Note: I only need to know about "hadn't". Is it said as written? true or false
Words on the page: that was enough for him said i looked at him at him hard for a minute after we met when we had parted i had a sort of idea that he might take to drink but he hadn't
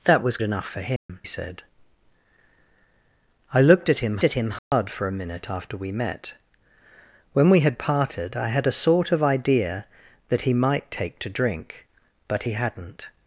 true